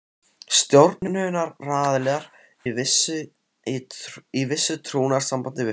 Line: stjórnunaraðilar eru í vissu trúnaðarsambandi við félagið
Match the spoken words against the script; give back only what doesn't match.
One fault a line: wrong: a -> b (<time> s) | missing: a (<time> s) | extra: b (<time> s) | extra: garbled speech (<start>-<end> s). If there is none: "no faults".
missing: eru (2.2 s)